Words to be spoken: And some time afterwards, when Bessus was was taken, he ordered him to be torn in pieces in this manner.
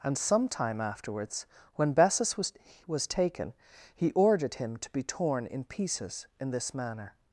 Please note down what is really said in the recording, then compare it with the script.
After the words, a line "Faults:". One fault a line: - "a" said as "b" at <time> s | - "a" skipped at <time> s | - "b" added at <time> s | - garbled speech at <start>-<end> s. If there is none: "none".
And some time afterwards, when Bessus was was taken, he ordered him to be torn in pieces in this manner.
Faults:
none